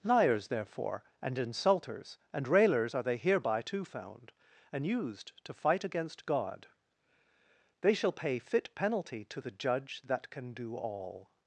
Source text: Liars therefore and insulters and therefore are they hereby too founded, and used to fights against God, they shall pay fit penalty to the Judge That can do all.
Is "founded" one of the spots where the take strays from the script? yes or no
yes